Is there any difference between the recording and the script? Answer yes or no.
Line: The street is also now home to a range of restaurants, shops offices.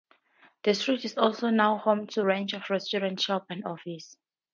yes